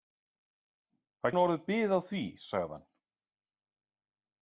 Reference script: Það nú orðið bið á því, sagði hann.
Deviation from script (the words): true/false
false